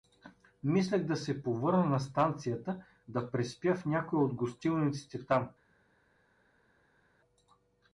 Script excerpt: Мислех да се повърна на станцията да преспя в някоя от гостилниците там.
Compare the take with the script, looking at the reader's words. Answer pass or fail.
pass